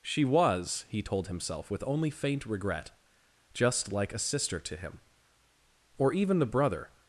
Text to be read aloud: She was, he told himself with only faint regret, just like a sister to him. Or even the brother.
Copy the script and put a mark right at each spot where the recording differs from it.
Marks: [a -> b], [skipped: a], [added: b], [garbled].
She was, he told himself with only faint regret, just like a sister to him. Or even the brother.